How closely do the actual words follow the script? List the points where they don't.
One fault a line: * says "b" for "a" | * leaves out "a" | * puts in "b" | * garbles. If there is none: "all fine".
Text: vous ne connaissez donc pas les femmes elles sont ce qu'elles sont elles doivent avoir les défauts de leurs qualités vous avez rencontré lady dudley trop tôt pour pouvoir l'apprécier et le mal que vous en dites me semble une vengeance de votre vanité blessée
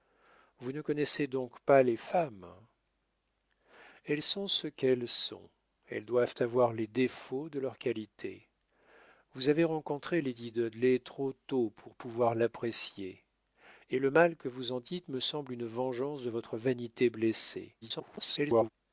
* garbles